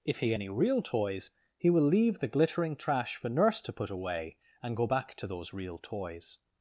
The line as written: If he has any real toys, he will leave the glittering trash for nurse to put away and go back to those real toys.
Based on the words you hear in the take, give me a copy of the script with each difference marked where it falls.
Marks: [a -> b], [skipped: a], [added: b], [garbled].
If he [skipped: has] any real toys, he will leave the glittering trash for nurse to put away and go back to those real toys.